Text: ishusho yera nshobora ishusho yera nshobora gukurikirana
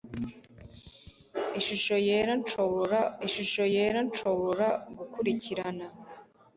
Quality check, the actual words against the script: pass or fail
pass